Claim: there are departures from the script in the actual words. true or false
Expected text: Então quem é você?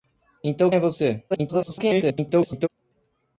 true